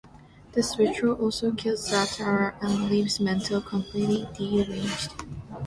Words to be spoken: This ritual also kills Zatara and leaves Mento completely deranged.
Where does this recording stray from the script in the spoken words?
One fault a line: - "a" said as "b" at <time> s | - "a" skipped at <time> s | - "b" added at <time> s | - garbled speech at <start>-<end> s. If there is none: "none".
none